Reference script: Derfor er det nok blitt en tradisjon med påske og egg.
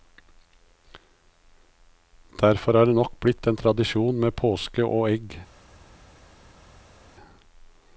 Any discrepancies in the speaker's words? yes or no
no